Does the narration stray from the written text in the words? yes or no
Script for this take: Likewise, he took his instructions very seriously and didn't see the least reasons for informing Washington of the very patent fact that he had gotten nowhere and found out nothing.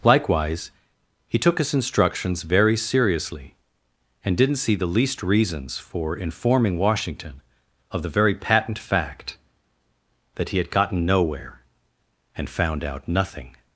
no